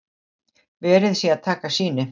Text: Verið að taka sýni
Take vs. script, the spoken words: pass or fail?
fail